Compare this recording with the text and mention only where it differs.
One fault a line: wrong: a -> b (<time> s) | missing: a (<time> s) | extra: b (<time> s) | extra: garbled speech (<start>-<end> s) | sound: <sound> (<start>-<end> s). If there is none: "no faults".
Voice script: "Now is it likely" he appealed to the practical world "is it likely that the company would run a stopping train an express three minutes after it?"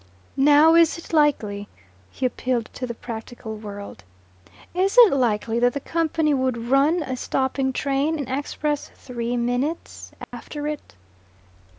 sound: dropout (10.2-10.3 s)